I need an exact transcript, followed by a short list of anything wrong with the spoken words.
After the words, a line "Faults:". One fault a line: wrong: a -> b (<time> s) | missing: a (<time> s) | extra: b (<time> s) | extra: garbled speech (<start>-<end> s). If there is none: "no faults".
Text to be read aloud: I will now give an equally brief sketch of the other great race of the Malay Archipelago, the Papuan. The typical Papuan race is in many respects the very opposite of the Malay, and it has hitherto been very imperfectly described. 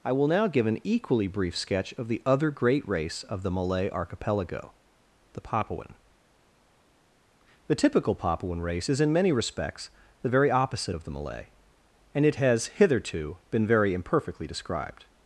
I will now give an equally brief sketch of the other great race of the Malay Archipelago, the Papuan. The typical Papuan race is in many respects the very opposite of the Malay, and it has hitherto been very imperfectly described.
Faults:
no faults